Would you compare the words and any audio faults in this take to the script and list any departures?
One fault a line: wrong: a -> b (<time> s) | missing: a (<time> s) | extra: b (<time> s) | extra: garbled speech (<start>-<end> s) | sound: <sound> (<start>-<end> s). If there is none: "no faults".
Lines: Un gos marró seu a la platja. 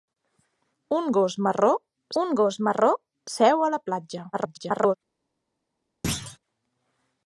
extra: un gos marró (2.2 s)
extra: garbled speech (4.3-5.0 s)
sound: thud (6.0-6.4 s)